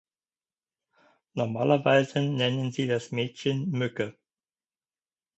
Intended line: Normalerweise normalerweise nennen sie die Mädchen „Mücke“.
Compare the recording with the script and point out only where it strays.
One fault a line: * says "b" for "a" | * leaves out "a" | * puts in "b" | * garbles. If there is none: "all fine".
* leaves out "normalerweise"
* says "das" for "die"